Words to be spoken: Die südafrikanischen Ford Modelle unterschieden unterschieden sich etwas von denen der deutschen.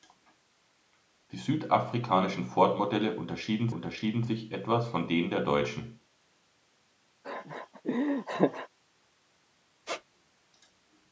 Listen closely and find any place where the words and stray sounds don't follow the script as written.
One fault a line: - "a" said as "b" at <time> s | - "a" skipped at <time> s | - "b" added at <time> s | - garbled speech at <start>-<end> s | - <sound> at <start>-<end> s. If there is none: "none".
- laugh at 7.2-8.7 s
- squeak at 9.8-10.0 s